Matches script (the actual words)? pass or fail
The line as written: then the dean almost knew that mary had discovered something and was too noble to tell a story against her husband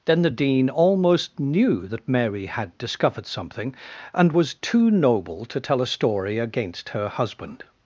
pass